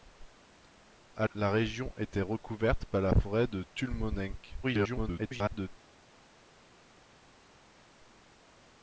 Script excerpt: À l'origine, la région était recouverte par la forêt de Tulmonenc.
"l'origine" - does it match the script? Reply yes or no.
no